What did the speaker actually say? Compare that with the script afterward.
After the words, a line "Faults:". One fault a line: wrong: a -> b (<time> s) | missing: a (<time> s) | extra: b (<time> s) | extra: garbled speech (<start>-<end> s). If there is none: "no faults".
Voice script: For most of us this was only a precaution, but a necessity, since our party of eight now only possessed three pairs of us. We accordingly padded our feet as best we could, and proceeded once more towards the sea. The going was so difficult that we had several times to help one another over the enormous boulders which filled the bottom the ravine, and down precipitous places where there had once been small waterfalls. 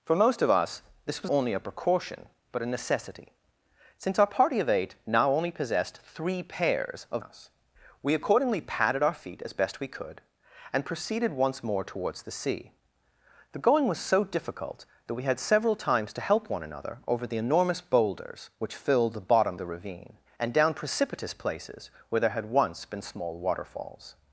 For most of us this was only a precaution, but a necessity, since our party of eight now only possessed three pairs of us. We accordingly padded our feet as best we could, and proceeded once more towards the sea. The going was so difficult that we had several times to help one another over the enormous boulders which filled the bottom the ravine, and down precipitous places where there had once been small waterfalls.
Faults:
no faults